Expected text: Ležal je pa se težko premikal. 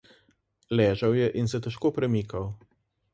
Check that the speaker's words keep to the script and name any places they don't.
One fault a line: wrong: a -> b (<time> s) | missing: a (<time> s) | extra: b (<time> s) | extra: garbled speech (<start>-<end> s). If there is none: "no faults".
wrong: pa -> in (1.4 s)